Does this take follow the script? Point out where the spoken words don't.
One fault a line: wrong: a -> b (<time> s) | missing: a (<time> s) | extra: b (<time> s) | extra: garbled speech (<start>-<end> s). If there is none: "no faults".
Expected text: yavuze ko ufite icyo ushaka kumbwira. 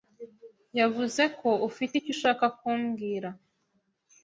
no faults